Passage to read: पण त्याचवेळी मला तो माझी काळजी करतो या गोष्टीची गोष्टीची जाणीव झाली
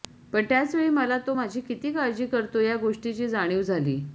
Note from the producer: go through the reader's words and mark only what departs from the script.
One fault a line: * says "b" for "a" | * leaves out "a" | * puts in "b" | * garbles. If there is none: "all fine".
* puts in "किती"
* leaves out "गोष्टीची"